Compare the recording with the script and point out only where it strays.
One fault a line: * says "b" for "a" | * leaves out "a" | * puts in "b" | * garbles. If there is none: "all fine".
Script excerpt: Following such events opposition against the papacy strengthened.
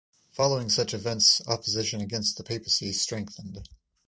all fine